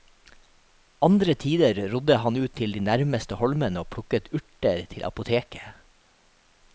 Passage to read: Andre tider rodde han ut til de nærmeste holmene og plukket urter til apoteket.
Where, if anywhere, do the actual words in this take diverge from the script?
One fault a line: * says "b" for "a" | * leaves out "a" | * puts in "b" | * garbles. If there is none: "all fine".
all fine